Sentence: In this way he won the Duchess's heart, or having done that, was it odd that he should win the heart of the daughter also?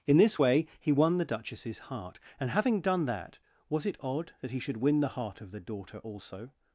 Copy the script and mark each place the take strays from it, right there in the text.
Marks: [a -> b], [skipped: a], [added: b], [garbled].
In this way he won the Duchess's heart, [or -> and] having done that, was it odd that he should win the heart of the daughter also?